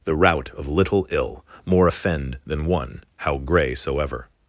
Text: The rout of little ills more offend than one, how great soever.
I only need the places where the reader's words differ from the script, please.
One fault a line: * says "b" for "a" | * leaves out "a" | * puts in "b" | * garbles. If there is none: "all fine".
* says "ill" for "ills"
* says "grey" for "great"